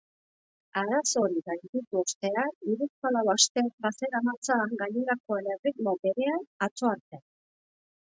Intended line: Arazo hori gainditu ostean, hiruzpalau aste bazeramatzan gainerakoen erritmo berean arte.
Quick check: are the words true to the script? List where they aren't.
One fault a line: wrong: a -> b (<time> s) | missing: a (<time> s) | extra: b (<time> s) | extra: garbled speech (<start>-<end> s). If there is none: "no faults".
extra: atzo (6.7 s)